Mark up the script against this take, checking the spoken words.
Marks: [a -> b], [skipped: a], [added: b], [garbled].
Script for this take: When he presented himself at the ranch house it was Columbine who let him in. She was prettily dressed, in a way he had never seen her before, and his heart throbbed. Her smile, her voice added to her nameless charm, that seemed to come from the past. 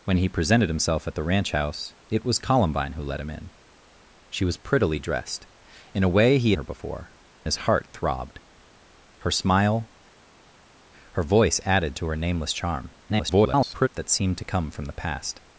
When he presented himself at the ranch house it was Columbine who let him in. She was prettily dressed, in a way he [skipped: had never seen] her before, [skipped: and] his heart throbbed. Her smile, her voice added to her nameless charm, [garbled] that seemed to come from the past.